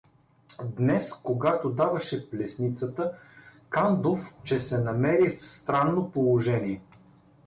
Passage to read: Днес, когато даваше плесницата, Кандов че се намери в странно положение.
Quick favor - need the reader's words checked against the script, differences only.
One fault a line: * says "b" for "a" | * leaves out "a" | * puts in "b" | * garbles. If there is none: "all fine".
all fine